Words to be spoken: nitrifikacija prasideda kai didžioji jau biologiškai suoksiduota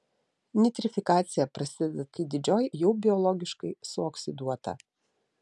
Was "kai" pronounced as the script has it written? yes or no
yes